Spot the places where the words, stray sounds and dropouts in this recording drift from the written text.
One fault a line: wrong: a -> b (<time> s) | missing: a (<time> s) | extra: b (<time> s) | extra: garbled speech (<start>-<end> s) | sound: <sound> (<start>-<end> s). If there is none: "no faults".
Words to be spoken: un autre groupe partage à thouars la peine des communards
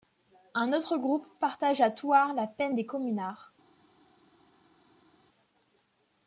no faults